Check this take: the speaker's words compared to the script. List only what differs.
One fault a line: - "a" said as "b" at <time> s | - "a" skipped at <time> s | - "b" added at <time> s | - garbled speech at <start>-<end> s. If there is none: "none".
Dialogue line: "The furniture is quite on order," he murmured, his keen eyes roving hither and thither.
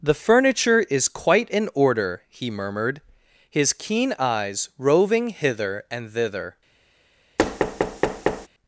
- "on" said as "in" at 1.5 s